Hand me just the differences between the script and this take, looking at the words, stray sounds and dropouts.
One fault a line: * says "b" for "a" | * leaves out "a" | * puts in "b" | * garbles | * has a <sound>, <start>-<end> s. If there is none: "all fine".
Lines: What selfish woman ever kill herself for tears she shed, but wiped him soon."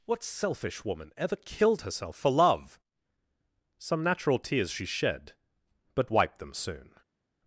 * says "killed" for "kill"
* puts in "love Some natural"
* says "them" for "him"